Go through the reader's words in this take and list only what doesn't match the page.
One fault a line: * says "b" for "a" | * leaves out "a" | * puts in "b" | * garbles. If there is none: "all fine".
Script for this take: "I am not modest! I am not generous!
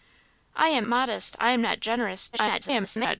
* leaves out "not"
* garbles